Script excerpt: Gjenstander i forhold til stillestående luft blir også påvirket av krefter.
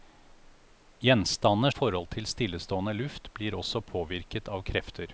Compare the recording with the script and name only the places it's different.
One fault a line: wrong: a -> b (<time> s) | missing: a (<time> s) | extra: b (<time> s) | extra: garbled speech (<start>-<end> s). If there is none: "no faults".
no faults